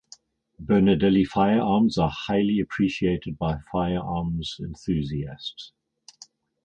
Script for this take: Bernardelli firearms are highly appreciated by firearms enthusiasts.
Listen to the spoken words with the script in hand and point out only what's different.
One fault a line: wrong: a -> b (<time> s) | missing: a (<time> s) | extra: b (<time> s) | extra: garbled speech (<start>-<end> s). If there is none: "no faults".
no faults